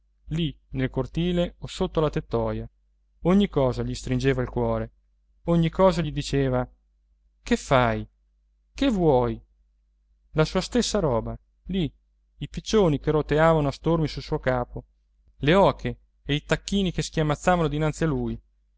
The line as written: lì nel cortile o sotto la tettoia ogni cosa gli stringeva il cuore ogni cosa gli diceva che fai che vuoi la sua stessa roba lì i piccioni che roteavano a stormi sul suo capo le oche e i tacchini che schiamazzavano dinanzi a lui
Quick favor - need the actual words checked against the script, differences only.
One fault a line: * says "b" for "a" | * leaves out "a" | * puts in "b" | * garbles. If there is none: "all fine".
all fine